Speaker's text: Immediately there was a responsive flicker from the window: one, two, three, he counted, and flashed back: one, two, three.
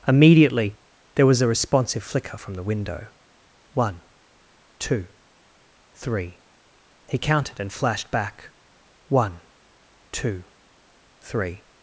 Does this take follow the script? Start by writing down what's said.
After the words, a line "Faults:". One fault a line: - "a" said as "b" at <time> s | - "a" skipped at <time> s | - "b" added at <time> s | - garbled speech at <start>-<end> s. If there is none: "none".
Immediately there was a responsive flicker from the window: one, two, three, he counted, and flashed back: one, two, three.
Faults:
none